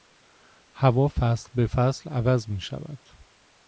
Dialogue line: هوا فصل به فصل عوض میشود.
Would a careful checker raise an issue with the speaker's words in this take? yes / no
no